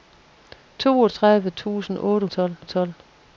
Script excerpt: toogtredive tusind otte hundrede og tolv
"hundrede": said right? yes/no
no